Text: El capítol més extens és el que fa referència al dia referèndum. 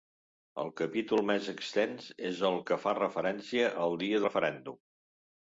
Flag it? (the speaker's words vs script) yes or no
no